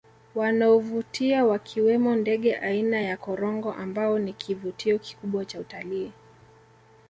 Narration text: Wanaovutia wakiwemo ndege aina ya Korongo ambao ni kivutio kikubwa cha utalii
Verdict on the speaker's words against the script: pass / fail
pass